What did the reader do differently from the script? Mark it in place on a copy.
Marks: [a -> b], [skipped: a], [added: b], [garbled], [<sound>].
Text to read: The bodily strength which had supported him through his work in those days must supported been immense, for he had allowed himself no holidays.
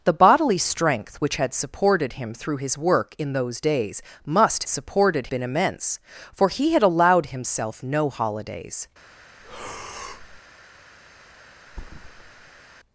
The bodily strength which had supported him through his work in those days must supported been immense, for he had allowed himself no holidays. [breath] [thud]